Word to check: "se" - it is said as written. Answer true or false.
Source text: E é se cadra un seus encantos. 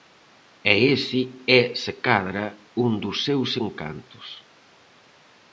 true